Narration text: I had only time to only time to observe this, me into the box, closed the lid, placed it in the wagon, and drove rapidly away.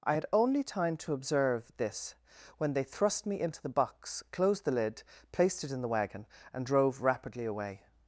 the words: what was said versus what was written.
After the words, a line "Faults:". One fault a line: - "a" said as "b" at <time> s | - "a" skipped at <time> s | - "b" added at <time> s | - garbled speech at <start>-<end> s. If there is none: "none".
I had only time to observe this, when they thrust me into the box, closed the lid, placed it in the wagon, and drove rapidly away.
Faults:
- "only time to observe this" said as "observe this when they thrust" at 1.1 s